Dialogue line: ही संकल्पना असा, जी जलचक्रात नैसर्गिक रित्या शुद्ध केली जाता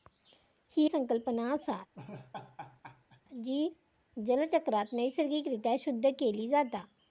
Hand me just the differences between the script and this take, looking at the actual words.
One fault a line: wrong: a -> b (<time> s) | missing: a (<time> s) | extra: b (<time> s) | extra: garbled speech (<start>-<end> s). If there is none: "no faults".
no faults